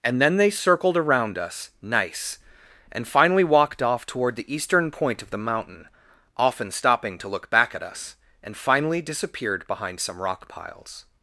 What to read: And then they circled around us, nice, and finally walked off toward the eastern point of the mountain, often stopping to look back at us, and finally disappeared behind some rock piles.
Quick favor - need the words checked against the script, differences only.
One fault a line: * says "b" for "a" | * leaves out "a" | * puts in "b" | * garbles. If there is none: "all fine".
all fine